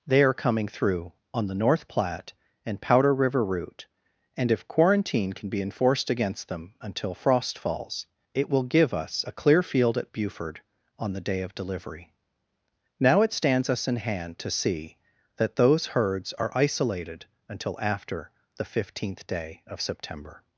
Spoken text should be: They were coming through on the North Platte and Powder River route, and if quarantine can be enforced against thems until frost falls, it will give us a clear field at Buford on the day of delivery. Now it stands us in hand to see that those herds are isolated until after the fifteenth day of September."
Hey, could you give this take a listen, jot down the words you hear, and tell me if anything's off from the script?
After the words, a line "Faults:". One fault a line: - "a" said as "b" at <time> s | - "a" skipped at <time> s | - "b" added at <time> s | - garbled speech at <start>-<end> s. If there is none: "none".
They are coming through on the North Platte and Powder River route, and if quarantine can be enforced against them until frost falls, it will give us a clear field at Buford on the day of delivery. Now it stands us in hand to see that those herds are isolated until after the fifteenth day of September."
Faults:
- "were" said as "are" at 0.2 s
- "thems" said as "them" at 6.5 s